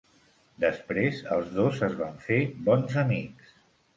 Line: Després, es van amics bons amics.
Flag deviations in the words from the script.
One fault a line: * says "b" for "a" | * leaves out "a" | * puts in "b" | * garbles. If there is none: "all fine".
* puts in "els dos"
* says "fer" for "amics"